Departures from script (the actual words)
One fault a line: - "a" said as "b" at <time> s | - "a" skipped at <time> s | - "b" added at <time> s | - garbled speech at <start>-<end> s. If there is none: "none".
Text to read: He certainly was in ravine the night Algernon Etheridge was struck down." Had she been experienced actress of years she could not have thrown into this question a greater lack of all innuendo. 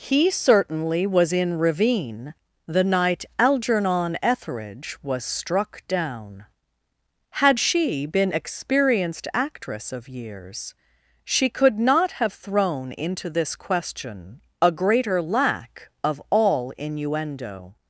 none